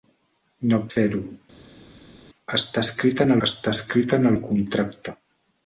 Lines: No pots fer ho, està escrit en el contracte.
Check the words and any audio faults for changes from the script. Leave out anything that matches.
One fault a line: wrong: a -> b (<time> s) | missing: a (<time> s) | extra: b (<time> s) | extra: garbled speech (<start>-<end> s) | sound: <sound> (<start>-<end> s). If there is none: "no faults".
missing: pots (0.8 s)
extra: està escrit en (3.5 s)